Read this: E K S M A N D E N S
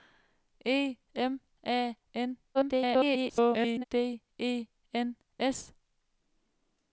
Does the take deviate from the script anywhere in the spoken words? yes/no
yes